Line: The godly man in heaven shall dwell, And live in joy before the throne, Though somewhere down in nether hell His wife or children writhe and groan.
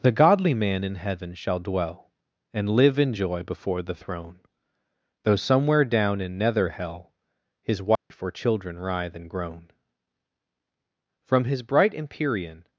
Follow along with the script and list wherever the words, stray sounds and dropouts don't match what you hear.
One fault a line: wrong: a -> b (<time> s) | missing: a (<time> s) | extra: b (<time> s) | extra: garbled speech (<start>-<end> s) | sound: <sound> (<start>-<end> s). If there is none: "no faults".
sound: dropout (8.0-8.1 s)
extra: From his bright Empyrean (11.3 s)